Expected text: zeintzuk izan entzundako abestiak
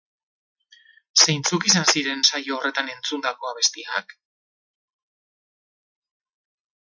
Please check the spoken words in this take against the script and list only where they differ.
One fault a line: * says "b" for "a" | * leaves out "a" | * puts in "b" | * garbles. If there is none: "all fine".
* puts in "ziren saio horretan"